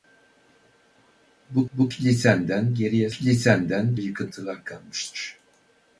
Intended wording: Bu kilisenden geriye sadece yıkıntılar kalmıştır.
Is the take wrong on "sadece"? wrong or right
wrong